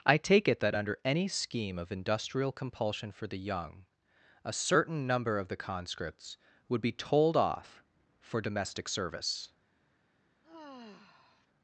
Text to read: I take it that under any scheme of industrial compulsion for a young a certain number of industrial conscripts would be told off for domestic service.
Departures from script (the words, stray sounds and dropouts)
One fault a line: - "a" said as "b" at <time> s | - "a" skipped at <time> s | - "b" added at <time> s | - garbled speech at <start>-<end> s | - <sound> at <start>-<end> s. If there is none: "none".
- "a" said as "the" at 3.3 s
- "industrial" said as "the" at 5.5 s
- sigh at 10.4-11.5 s